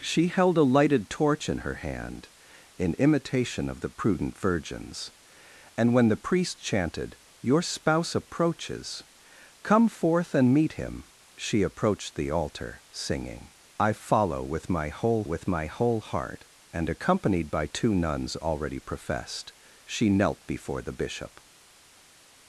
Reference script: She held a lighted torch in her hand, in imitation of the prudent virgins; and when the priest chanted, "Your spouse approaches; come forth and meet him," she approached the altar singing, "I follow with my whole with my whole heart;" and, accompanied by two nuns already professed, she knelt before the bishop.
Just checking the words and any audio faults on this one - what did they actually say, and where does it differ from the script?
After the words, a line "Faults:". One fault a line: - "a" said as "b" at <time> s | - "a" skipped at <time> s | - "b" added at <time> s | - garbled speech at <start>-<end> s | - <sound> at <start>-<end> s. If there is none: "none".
She held a lighted torch in her hand, in imitation of the prudent virgins; and when the priest chanted, "Your spouse approaches; come forth and meet him," she approached the altar singing, "I follow with my whole with my whole heart;" and, accompanied by two nuns already professed, she knelt before the bishop.
Faults:
none